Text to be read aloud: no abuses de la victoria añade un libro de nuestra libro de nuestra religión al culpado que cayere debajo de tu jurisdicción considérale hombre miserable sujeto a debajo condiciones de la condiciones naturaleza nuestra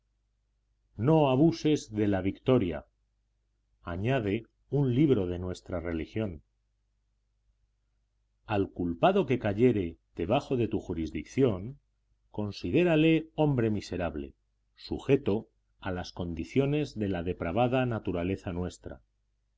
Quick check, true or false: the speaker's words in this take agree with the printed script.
false